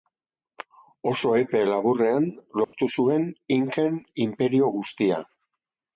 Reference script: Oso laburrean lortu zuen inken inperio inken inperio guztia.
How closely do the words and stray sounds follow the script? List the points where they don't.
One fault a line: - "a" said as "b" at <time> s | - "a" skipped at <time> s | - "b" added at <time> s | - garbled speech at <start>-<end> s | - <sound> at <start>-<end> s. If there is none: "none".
- "epe" added at 1.4 s
- dropout at 2.6-2.7 s
- "inken inperio" skipped at 4.7 s